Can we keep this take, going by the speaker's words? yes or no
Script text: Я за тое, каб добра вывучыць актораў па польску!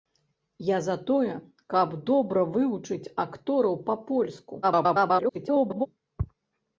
no